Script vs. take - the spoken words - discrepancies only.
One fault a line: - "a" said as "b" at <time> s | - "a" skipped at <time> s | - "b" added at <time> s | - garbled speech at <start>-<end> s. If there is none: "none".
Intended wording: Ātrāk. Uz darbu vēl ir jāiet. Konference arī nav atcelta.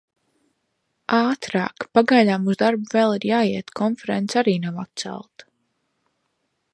- "Pagaidām" added at 2.0 s